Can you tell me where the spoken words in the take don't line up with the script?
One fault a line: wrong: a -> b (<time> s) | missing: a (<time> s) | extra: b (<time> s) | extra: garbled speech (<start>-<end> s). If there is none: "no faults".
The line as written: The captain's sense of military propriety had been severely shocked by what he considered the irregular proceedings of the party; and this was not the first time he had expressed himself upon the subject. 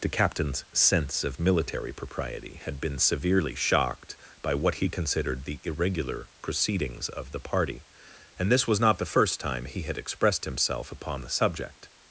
no faults